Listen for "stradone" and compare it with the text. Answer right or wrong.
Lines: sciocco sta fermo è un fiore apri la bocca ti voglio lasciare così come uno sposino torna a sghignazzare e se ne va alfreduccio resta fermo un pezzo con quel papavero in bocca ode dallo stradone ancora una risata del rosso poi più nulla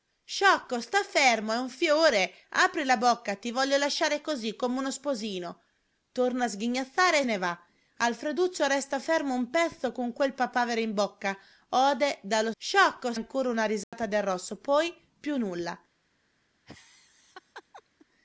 wrong